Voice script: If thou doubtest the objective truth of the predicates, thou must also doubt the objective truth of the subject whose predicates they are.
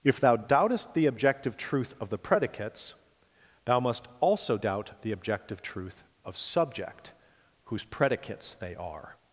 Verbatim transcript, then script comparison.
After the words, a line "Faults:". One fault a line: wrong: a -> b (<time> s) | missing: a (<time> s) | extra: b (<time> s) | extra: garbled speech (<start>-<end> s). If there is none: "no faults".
If thou doubtest the objective truth of the predicates, thou must also doubt the objective truth of subject whose predicates they are.
Faults:
missing: the (6.4 s)